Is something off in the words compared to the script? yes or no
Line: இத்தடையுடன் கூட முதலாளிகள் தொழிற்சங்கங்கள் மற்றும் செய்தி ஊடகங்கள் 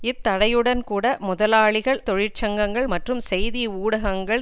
no